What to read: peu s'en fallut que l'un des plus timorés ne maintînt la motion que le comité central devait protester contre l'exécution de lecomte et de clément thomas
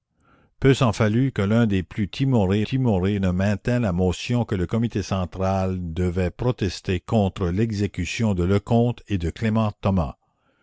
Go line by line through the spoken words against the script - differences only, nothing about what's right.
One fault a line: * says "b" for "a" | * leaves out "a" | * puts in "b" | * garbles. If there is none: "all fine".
* puts in "timorés"